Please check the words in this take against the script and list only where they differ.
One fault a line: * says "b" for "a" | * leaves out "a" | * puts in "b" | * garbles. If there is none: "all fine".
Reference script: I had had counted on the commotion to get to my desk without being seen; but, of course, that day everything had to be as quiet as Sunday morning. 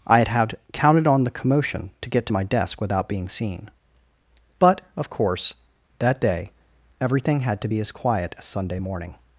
all fine